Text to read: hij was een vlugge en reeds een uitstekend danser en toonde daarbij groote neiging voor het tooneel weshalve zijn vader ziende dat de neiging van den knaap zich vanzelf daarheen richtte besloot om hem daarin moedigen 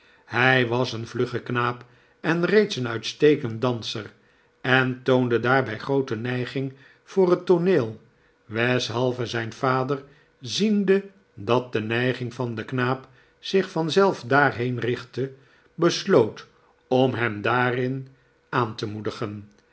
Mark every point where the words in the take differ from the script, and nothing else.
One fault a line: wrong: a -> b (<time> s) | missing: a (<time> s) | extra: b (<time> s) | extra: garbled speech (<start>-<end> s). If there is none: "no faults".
extra: knaap (1.4 s)
extra: aan te (18.5 s)